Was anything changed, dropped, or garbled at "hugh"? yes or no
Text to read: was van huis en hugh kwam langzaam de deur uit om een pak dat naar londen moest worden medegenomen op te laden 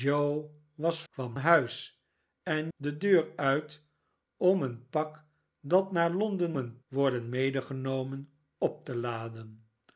yes